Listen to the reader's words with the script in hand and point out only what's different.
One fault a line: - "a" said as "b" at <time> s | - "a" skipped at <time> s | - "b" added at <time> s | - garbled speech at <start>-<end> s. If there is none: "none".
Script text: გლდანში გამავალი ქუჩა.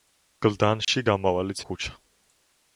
none